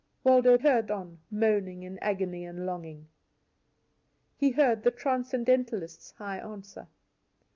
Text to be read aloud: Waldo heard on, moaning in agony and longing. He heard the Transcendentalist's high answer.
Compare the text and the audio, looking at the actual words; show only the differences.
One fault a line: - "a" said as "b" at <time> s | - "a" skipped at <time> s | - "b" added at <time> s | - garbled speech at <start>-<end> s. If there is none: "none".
none